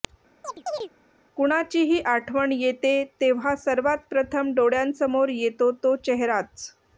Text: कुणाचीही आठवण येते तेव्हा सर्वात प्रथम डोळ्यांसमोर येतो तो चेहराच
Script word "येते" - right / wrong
right